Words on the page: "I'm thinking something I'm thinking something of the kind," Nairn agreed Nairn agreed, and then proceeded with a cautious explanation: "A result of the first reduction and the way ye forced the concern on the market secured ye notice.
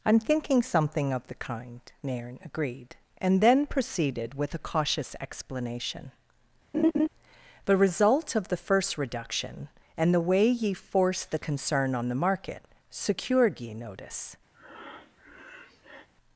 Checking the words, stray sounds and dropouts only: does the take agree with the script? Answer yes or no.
no